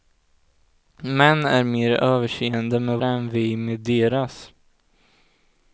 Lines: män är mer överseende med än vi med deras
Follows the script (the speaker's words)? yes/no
yes